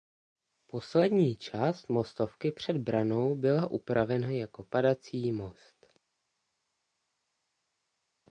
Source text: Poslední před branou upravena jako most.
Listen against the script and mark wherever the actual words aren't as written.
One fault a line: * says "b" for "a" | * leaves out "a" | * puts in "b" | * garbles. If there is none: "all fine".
* puts in "část mostovky"
* puts in "byla"
* puts in "padací"